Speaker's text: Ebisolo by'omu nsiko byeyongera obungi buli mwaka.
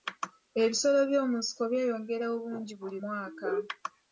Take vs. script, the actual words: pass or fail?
pass